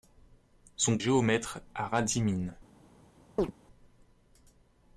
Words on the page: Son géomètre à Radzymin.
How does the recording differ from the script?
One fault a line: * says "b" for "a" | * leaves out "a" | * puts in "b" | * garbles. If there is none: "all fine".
all fine